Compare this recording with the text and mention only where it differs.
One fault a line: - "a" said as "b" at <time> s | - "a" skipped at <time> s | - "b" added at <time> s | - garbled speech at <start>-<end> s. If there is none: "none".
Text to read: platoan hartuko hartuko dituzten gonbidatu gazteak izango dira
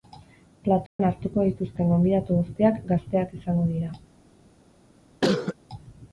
- "hartuko" skipped at 1.4 s
- "guztiak" added at 2.4 s